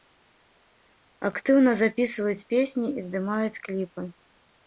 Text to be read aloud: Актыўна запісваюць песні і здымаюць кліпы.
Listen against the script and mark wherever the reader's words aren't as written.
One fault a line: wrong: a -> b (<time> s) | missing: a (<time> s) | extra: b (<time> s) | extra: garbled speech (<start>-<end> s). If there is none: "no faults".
no faults